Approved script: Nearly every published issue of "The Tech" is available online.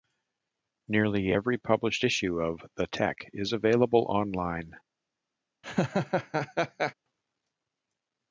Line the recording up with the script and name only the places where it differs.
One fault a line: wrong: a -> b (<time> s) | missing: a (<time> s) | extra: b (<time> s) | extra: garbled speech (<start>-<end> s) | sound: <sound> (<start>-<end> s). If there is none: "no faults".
sound: laugh (5.6-6.9 s)